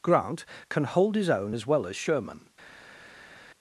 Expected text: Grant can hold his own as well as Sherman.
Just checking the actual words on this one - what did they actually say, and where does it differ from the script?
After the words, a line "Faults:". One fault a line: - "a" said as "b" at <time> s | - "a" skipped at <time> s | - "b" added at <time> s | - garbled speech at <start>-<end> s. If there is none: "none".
Grant can hold his own as well as Sherman.
Faults:
none